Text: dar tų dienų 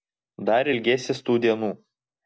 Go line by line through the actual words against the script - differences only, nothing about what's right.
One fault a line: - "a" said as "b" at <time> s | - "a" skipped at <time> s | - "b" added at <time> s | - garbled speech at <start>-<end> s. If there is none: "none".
- "ilgėsies" added at 0.7 s